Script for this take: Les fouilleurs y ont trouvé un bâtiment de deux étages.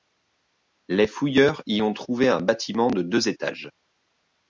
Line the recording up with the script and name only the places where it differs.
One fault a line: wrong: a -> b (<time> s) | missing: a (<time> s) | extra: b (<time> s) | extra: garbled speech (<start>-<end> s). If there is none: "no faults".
no faults